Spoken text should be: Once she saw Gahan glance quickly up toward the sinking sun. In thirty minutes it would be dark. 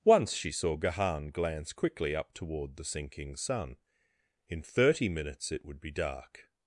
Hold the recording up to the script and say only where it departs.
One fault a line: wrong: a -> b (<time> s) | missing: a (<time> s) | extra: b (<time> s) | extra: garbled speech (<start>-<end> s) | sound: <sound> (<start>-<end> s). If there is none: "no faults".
no faults